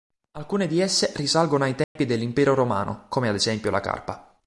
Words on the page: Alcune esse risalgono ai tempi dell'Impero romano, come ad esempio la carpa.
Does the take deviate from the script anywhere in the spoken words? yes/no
yes